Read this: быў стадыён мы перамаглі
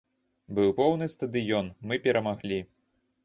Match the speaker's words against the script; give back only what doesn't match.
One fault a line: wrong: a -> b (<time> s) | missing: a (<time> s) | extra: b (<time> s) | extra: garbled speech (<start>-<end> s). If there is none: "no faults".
extra: поўны (0.8 s)